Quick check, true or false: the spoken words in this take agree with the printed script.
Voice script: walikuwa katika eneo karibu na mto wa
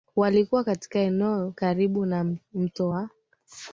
true